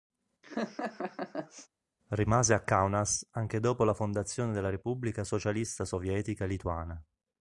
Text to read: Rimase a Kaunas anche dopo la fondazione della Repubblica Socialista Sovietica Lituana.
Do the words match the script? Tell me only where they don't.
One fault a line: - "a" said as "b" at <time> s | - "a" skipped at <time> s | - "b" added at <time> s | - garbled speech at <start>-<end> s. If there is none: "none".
none